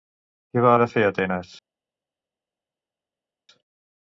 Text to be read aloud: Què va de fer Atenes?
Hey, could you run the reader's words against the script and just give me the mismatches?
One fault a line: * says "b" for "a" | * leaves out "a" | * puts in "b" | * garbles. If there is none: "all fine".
all fine